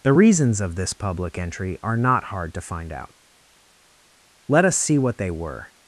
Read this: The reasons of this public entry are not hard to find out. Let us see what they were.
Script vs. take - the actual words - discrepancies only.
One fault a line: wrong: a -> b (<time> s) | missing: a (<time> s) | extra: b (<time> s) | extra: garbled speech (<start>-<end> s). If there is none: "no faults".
no faults